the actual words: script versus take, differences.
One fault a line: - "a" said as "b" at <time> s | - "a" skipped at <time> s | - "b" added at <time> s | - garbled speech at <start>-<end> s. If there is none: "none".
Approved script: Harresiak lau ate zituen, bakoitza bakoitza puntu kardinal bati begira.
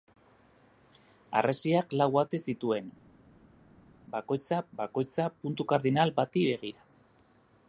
none